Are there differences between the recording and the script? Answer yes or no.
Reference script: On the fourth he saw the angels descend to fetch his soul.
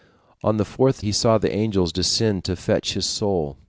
no